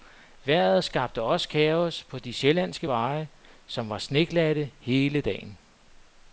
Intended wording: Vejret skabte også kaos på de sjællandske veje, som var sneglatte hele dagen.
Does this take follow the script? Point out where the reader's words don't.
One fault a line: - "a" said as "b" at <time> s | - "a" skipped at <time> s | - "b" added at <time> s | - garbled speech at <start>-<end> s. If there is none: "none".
none